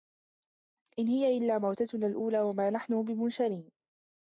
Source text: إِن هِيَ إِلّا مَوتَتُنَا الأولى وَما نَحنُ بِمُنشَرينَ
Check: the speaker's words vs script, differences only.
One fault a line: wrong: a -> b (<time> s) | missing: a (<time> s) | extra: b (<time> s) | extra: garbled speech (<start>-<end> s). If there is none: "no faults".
no faults